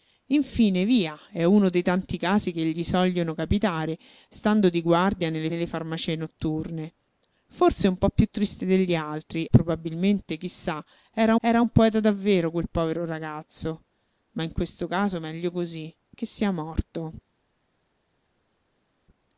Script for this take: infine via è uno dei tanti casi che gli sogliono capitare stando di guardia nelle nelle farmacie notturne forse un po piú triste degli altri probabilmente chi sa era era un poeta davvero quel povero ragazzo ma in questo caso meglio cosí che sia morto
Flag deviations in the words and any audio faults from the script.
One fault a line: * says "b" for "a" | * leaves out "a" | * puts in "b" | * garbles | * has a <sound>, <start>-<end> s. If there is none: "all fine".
all fine